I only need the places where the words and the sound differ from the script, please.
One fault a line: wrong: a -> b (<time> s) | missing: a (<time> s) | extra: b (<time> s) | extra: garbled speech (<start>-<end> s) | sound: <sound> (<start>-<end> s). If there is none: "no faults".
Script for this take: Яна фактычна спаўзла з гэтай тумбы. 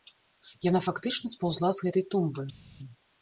no faults